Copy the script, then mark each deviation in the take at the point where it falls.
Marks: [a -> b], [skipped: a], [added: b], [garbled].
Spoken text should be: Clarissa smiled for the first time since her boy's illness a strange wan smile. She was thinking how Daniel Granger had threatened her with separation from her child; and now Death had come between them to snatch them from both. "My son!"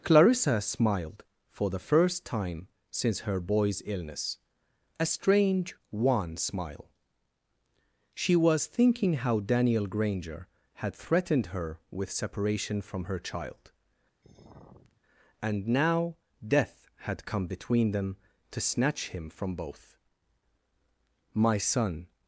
Clarissa smiled for the first time since her boy's illness a strange wan smile. She was thinking how Daniel Granger had threatened her with separation from her child; and now Death had come between them to snatch [them -> him] from both. "My son!"